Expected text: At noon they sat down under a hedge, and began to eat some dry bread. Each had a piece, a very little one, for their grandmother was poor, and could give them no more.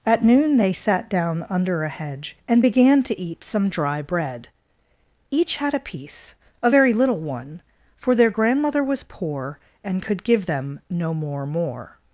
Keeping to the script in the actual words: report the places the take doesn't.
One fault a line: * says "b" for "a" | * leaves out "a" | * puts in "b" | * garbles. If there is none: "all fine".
* puts in "more"